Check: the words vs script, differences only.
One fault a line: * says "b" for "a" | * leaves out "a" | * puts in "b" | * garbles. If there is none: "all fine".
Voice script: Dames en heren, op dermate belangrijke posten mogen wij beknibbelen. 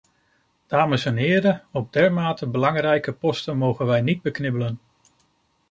* puts in "niet"